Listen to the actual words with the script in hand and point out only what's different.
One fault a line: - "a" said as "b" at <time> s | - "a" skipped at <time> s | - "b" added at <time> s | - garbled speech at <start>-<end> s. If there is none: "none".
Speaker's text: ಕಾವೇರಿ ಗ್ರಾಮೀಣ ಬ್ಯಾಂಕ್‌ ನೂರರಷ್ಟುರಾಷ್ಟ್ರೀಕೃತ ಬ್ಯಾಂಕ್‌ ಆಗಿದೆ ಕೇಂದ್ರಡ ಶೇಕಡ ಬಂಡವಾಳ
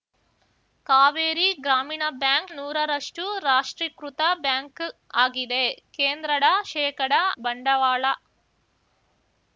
none